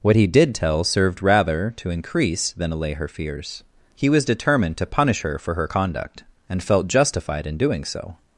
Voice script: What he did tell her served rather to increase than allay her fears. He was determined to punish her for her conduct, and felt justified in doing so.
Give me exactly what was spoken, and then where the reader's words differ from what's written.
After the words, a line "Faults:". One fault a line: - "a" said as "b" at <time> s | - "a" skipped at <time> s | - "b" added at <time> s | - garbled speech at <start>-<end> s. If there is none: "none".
What he did tell served rather to increase than allay her fears. He was determined to punish her for her conduct, and felt justified in doing so.
Faults:
- "her" skipped at 0.8 s